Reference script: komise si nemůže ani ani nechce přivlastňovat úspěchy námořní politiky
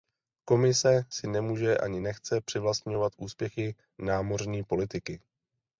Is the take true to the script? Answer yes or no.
no